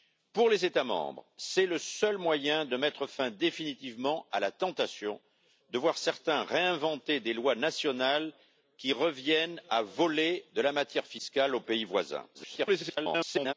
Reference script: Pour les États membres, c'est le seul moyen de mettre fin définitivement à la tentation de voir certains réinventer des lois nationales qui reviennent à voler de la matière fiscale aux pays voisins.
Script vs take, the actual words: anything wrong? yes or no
yes